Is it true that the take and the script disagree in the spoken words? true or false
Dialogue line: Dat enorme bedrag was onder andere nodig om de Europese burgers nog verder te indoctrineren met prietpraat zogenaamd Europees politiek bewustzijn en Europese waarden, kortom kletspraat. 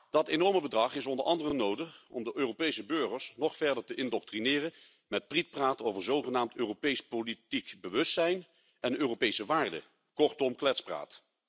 true